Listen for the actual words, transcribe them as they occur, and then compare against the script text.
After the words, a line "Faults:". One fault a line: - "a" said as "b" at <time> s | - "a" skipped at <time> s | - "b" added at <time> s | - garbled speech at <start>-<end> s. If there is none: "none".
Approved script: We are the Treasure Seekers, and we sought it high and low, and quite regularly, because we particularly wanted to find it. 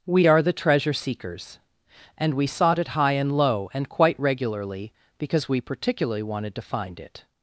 We are the Treasure Seekers, and we sought it high and low, and quite regularly, because we particularly wanted to find it.
Faults:
none